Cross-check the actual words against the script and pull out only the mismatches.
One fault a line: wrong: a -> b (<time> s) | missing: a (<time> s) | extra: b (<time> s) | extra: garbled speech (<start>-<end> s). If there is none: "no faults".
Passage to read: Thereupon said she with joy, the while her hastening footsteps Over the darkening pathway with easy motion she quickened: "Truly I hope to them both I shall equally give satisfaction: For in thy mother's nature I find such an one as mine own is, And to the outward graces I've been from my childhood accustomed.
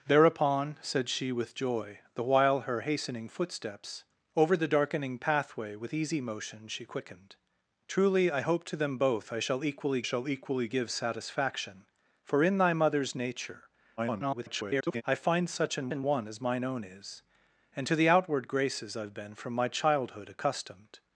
extra: shall equally (10.0 s)
extra: garbled speech (14.0-15.0 s)
extra: an (15.9 s)